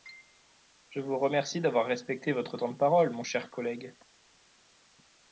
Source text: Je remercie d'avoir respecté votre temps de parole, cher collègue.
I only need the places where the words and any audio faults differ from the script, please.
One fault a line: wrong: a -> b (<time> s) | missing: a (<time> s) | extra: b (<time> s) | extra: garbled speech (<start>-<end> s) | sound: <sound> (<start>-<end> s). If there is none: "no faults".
extra: vous (1.0 s)
extra: mon (3.1 s)